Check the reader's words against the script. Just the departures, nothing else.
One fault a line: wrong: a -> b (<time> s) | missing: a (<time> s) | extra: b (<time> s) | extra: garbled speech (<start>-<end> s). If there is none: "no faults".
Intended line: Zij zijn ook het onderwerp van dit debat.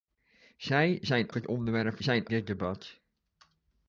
missing: ook (1.3 s)
wrong: van -> zijn (2.0 s)